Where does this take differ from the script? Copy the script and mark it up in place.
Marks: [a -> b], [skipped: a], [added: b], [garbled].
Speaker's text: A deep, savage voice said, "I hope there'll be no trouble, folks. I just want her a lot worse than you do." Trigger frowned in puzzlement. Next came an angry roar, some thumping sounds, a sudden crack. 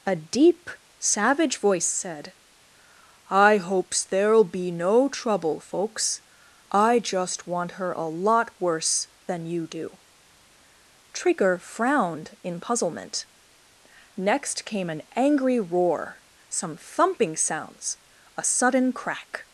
A deep, savage voice said, "I [hope -> hopes] there'll be no trouble, folks. I just want her a lot worse than you do." Trigger frowned in puzzlement. Next came an angry roar, some thumping sounds, a sudden crack.